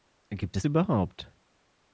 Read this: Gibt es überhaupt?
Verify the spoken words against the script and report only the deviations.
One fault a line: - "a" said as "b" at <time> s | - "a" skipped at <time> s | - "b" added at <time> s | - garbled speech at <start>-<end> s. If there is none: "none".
none